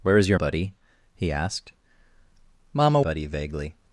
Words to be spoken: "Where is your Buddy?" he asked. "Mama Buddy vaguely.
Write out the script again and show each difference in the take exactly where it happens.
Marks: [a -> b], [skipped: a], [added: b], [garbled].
"Where is your Buddy?" he asked. "Mama Buddy vaguely.